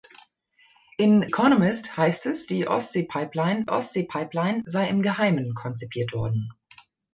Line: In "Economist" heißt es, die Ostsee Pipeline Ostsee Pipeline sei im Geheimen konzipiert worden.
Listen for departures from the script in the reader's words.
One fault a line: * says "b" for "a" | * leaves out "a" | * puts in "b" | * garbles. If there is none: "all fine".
all fine